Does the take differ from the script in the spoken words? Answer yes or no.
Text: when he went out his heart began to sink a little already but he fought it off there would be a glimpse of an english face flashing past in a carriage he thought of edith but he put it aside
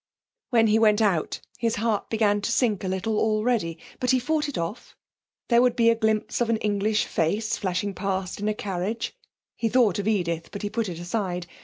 no